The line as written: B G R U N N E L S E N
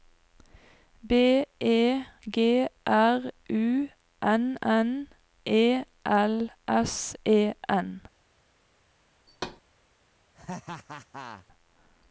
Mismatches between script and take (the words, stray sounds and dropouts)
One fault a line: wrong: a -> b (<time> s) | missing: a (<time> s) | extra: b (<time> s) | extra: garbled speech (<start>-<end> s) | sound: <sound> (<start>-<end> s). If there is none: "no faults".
extra: E (1.6 s)
sound: thud (9.3-9.6 s)
sound: laugh (10.3-11.5 s)